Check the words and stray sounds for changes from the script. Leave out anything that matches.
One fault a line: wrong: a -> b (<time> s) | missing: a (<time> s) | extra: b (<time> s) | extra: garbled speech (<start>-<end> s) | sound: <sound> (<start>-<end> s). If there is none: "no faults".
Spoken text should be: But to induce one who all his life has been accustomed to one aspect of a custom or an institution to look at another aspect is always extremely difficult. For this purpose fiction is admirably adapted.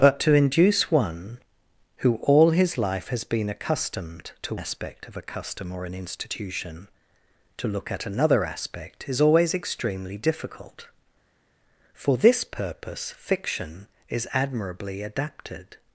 missing: one (4.5 s)